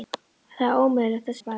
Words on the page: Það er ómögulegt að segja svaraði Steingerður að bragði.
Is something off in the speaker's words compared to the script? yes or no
yes